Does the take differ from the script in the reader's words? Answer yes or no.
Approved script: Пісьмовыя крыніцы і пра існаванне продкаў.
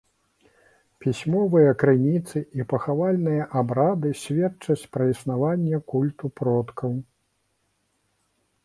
yes